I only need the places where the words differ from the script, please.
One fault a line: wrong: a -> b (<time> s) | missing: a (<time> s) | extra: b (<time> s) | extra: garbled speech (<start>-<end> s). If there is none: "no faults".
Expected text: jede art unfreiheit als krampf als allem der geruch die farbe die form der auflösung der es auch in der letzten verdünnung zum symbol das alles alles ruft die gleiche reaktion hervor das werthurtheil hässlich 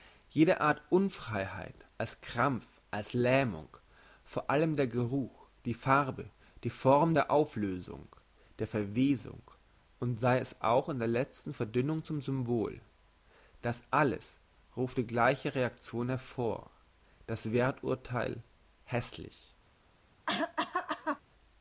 extra: lähmung vor (3.1 s)
extra: verwesung und sei (8.7 s)
missing: alles (14.4 s)